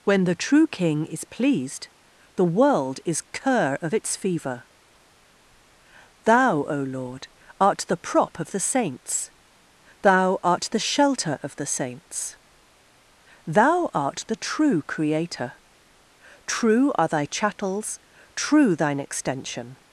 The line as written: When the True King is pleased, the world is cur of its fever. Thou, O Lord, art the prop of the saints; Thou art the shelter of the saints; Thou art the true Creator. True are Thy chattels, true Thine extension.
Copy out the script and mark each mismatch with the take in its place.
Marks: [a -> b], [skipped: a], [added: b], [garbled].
When the True King is pleased, the world is cur of its fever. Thou, O Lord, art the prop of the saints; Thou art the shelter of the saints; Thou art the true Creator. True are Thy chattels, true Thine extension.